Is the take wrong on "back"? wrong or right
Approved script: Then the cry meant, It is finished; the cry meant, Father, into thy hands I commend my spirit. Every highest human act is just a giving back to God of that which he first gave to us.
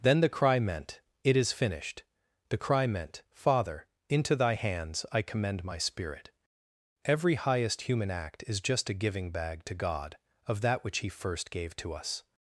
wrong